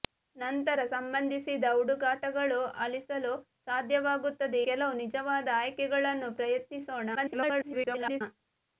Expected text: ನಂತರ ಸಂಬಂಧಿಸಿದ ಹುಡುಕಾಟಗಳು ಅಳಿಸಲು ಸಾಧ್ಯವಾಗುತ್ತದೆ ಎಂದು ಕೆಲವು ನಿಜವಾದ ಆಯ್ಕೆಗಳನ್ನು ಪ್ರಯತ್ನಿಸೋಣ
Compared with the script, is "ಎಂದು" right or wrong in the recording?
wrong